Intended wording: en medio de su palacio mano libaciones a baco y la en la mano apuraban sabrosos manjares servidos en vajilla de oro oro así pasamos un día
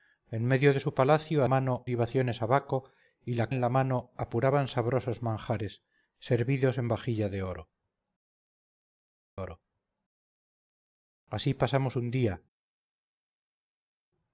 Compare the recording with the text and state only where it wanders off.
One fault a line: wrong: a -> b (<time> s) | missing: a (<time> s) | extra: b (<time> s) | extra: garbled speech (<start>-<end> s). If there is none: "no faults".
no faults